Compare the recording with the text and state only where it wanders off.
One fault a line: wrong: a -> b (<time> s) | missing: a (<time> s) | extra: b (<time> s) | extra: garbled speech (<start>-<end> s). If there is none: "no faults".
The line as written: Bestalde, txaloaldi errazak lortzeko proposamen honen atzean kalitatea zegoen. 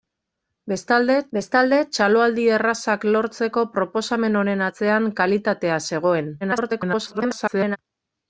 extra: bestalde (1.4 s)
extra: garbled speech (6.4-7.8 s)